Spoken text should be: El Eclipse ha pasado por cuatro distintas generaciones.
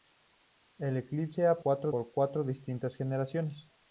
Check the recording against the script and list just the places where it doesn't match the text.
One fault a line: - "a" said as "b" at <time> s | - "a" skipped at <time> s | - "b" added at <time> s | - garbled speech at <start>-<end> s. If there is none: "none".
- "pasado" said as "cuatro" at 1.6 s